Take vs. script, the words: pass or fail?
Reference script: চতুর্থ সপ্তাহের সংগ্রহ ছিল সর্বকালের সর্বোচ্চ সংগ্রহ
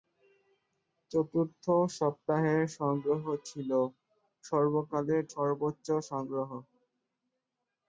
pass